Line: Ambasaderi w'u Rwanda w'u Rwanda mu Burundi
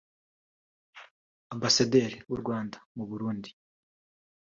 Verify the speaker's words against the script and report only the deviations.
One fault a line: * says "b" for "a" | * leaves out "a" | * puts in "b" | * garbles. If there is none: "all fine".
* leaves out "w'u Rwanda"